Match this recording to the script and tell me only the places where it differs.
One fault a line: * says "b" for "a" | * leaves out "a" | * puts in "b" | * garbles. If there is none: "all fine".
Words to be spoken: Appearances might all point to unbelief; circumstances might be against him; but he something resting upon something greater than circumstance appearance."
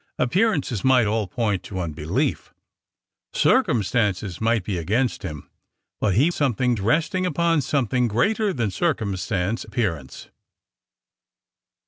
all fine